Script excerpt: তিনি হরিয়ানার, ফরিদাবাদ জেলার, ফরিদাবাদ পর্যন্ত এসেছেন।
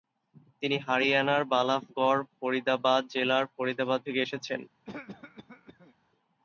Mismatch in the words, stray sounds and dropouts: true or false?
true